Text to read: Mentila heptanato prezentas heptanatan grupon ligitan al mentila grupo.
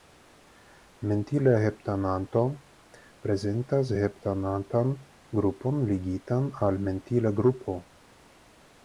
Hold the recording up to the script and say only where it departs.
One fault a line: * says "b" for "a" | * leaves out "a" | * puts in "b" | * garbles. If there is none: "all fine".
all fine